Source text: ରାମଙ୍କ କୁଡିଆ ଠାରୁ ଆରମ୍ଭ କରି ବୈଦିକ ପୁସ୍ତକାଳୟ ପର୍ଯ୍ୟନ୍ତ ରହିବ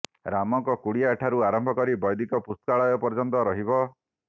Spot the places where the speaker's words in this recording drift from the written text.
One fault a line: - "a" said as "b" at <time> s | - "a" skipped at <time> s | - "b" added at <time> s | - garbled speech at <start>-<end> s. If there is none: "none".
none